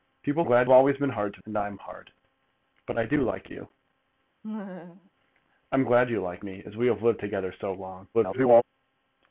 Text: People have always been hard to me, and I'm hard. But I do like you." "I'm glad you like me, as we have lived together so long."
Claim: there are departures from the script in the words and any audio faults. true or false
true